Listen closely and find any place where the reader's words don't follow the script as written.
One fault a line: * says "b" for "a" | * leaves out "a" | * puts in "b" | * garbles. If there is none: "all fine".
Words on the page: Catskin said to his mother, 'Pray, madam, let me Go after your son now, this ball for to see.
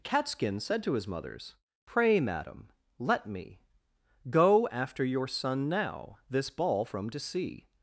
* says "mothers" for "mother"
* says "from" for "for"